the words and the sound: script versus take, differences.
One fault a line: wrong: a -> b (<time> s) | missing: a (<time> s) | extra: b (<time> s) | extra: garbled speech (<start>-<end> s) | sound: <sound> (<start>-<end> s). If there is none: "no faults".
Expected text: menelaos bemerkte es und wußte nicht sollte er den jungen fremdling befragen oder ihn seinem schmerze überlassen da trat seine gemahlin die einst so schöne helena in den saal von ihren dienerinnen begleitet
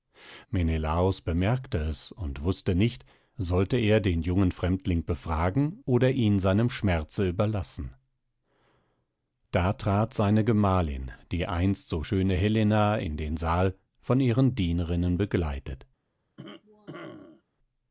sound: cough (16.4-17.4 s)